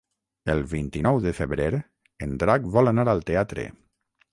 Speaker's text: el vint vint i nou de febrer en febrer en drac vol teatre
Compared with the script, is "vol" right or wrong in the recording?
wrong